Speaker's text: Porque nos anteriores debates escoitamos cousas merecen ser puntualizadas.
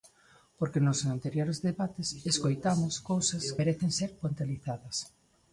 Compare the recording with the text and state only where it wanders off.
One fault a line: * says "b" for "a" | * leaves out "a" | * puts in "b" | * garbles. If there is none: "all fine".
all fine